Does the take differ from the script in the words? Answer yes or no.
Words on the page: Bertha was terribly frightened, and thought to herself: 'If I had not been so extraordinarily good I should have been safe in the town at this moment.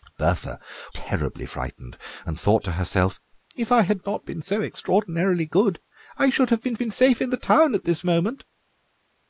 yes